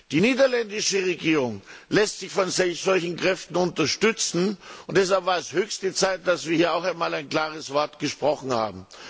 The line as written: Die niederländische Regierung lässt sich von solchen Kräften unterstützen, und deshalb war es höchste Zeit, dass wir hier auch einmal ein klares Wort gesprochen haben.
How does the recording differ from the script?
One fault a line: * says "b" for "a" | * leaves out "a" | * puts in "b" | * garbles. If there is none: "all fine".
all fine